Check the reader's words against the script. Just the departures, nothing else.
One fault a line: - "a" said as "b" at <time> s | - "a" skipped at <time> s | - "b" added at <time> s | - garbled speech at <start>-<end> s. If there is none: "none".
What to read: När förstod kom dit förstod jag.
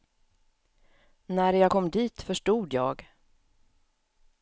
- "förstod" said as "jag" at 1.5 s